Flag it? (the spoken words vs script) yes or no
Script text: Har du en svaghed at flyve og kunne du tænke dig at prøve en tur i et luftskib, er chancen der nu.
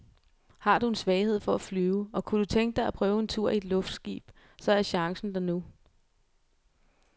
yes